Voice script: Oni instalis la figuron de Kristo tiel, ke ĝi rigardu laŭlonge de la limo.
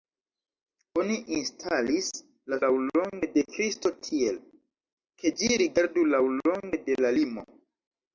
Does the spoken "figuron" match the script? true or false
false